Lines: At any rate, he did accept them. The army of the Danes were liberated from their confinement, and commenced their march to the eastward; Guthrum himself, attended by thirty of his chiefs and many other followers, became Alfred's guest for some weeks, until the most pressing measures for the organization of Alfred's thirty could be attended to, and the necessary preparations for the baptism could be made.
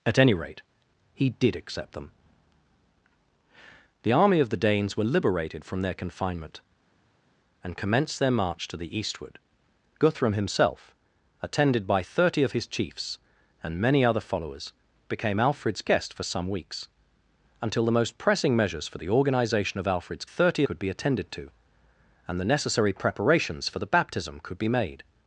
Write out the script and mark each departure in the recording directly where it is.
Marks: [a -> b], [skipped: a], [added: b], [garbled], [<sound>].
At any rate, he did accept them. The army of the Danes were liberated from their confinement, and commenced their march to the eastward; Guthrum himself, attended by thirty of his chiefs and many other followers, became Alfred's guest for some weeks, until the most pressing measures for the organization of Alfred's thirty could be attended to, and the necessary preparations for the baptism could be made.